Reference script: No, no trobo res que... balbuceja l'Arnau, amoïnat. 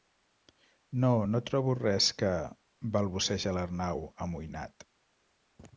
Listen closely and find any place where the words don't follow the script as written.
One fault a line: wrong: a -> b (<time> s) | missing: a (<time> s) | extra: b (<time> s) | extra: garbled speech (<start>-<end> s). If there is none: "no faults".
no faults